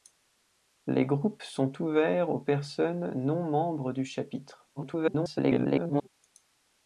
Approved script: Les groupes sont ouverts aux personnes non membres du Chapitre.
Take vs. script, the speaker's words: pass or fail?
fail